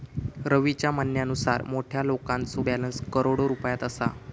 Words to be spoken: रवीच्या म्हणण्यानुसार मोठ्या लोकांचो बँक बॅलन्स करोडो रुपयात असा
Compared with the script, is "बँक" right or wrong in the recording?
wrong